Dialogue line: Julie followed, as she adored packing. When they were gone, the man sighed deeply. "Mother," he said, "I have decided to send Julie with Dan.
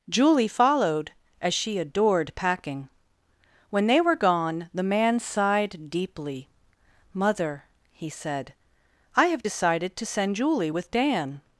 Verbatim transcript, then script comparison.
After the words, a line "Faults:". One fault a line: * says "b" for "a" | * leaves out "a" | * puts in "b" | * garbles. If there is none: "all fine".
Julie followed, as she adored packing. When they were gone, the man sighed deeply. "Mother," he said, "I have decided to send Julie with Dan.
Faults:
all fine